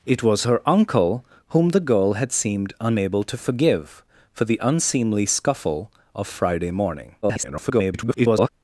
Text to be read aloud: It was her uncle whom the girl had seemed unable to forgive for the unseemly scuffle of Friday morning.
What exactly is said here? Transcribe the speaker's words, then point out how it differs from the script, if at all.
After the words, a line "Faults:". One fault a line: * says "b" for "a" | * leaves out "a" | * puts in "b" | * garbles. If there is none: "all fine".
It was her uncle whom the girl had seemed unable to forgive for the unseemly scuffle of Friday morning. [garbled]
Faults:
* garbles